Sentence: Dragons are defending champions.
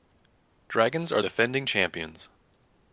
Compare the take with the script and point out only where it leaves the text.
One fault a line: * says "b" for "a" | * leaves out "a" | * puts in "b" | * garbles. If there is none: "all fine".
all fine